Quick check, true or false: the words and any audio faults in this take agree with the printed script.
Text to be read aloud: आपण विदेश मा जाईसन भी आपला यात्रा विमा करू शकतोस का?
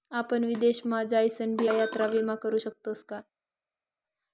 false